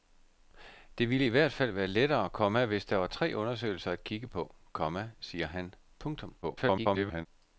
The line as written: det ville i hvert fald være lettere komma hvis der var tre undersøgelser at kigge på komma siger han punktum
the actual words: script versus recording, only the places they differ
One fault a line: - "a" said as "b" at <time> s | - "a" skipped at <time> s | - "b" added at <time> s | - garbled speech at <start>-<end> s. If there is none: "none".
- garbled speech at 6.4-7.3 s